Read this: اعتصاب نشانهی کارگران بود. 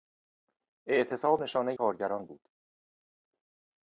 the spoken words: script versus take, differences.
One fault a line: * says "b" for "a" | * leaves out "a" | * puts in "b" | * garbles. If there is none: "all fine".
all fine